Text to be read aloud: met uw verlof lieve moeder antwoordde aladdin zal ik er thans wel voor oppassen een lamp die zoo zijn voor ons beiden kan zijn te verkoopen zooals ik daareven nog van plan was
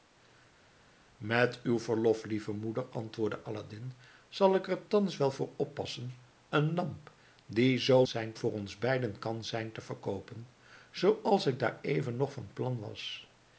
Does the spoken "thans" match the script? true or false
true